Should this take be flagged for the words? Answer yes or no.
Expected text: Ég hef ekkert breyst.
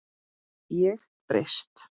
yes